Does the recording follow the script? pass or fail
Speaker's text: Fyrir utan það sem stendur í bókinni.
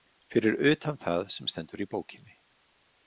pass